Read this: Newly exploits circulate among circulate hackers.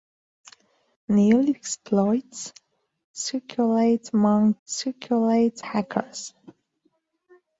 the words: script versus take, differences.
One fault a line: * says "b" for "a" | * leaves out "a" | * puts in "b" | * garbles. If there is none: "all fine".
all fine